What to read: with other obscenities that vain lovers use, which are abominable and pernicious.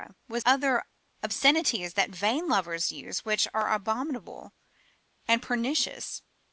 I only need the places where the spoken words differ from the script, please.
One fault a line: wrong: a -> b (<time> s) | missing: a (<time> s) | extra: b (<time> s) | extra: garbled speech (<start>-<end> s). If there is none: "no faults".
no faults